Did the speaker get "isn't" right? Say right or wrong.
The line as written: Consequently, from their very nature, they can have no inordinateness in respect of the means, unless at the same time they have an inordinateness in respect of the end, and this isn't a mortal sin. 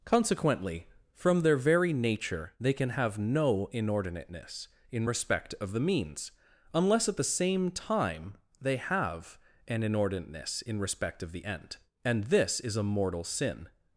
wrong